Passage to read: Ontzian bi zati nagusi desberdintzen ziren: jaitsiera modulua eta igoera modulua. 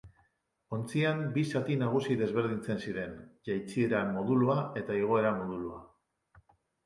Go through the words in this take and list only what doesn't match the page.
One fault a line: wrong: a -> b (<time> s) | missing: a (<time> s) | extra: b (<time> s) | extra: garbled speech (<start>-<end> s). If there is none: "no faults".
no faults